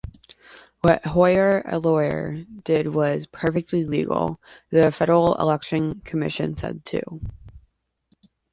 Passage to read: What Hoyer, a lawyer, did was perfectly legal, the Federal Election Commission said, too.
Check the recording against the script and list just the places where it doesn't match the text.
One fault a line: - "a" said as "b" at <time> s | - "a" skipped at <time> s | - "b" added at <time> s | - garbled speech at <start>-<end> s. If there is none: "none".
none